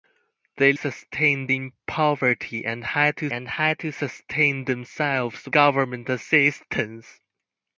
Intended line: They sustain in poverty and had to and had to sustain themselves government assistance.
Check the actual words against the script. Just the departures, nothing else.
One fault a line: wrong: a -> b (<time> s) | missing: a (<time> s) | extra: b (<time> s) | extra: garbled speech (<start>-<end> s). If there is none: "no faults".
no faults